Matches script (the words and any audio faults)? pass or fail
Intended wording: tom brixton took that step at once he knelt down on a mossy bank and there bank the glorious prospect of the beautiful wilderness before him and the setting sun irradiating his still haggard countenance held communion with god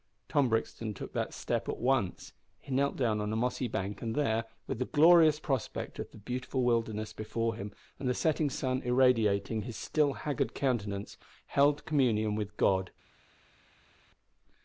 fail